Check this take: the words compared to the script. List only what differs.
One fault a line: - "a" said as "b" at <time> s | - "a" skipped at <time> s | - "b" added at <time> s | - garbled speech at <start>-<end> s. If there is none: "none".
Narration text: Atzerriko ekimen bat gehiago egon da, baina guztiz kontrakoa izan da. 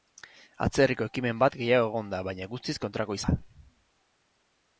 - "izan" skipped at 3.2 s